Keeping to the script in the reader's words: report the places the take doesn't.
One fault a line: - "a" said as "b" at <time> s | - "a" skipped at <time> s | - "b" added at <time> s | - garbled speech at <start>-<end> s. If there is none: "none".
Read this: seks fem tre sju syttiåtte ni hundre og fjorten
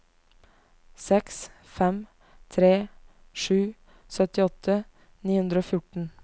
none